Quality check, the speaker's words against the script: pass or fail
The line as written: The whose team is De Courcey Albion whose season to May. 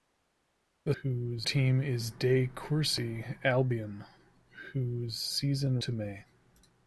pass